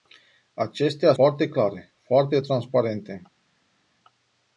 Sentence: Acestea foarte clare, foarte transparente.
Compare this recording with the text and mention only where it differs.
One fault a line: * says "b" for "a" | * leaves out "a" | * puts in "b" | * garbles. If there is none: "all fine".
all fine